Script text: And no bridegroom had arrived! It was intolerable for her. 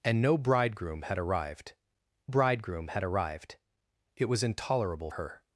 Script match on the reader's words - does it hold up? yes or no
no